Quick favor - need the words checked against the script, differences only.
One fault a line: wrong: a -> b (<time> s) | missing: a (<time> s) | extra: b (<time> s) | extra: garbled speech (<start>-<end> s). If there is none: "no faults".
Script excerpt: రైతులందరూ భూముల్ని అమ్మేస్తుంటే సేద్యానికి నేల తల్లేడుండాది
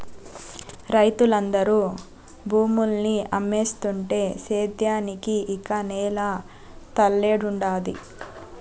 extra: ఇక (5.6 s)